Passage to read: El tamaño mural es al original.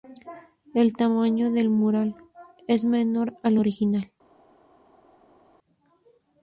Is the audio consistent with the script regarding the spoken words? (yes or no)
no